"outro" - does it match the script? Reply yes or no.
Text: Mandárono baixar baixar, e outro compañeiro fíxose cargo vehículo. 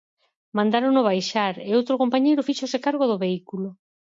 yes